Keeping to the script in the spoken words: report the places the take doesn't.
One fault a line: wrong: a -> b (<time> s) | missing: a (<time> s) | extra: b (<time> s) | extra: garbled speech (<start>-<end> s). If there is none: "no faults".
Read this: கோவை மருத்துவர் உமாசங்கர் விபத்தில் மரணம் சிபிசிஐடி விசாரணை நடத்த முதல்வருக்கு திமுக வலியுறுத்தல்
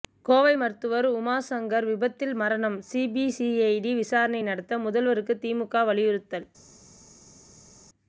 no faults